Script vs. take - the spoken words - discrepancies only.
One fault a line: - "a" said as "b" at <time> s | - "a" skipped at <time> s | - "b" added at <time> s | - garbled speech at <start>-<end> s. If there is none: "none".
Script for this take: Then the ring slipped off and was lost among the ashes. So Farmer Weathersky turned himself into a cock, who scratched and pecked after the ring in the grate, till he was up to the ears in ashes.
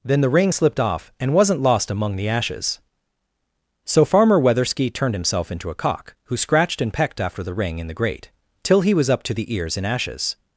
- "was" said as "wasn't" at 1.3 s